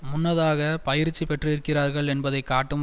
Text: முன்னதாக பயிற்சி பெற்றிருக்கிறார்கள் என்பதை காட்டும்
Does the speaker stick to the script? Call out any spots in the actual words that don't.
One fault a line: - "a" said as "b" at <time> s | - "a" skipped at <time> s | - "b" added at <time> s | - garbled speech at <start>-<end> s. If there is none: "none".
none